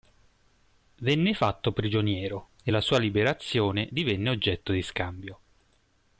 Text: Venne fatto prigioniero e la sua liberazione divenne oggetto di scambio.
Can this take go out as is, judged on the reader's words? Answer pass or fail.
pass